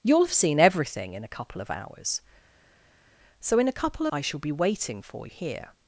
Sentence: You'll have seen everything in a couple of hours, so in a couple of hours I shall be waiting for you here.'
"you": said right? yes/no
no